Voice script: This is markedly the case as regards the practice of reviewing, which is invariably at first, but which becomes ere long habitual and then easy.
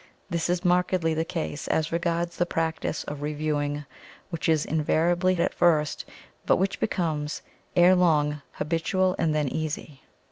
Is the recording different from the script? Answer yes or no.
no